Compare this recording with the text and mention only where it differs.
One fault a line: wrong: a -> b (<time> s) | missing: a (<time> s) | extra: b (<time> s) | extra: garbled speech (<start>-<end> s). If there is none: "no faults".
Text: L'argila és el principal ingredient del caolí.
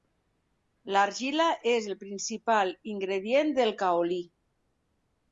no faults